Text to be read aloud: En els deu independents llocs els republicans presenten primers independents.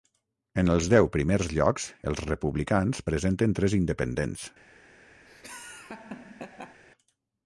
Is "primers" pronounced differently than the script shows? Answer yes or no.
yes